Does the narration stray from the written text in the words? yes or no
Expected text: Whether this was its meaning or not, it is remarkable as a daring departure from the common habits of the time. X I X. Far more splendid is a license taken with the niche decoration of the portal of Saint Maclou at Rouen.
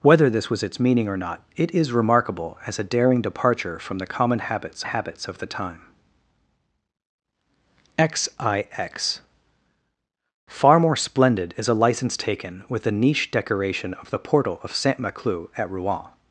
yes